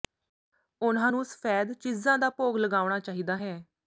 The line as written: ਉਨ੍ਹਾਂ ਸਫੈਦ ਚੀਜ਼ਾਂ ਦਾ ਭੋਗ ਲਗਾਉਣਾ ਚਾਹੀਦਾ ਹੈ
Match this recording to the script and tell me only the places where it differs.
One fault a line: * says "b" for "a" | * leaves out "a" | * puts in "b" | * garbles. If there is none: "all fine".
* puts in "ਨੂੰ"